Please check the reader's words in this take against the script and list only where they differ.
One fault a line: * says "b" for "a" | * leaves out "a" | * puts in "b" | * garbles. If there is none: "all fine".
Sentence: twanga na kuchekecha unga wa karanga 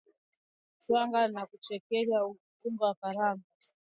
all fine